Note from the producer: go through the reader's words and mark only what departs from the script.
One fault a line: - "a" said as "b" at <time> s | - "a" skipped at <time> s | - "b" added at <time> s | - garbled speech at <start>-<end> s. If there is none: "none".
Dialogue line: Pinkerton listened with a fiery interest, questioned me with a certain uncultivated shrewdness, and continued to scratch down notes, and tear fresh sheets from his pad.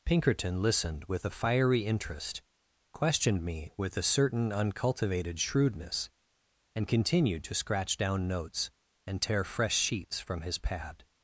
none